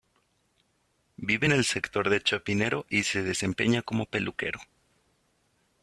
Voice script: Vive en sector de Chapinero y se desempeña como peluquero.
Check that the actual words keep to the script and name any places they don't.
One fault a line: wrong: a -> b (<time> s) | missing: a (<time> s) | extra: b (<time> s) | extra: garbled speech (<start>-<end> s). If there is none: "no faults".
extra: el (1.5 s)